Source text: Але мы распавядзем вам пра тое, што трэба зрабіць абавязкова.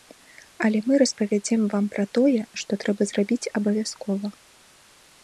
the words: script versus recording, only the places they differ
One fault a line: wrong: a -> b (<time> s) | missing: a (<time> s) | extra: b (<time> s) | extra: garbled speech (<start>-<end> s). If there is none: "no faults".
no faults